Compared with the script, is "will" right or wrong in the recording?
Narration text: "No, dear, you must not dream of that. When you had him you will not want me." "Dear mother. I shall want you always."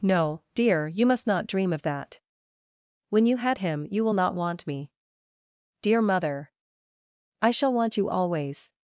right